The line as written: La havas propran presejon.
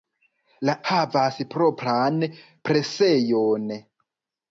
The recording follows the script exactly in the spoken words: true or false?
true